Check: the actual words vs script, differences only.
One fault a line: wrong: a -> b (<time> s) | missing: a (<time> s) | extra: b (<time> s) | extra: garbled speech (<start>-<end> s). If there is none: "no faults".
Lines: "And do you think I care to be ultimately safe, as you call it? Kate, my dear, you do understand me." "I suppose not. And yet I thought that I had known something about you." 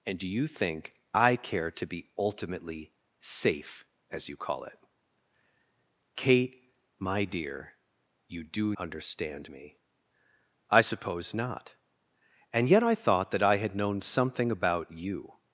no faults